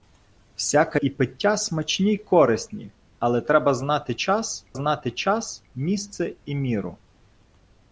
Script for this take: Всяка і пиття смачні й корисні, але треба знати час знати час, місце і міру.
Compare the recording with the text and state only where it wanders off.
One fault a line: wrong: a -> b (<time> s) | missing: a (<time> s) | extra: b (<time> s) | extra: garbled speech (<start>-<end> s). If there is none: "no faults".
no faults